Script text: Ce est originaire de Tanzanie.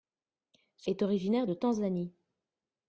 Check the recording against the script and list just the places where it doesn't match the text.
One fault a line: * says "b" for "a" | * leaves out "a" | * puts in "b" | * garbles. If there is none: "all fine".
all fine